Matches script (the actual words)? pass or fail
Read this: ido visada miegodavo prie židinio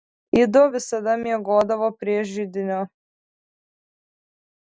pass